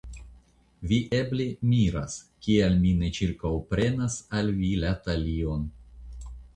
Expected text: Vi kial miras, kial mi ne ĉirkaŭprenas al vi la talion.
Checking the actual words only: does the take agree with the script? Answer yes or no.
no